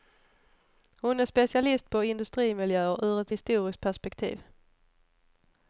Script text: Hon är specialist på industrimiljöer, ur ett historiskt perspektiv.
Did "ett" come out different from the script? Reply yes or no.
no